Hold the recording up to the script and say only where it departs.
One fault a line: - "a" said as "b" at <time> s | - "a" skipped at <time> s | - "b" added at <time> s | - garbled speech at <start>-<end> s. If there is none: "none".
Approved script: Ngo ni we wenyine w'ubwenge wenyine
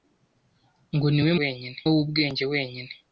none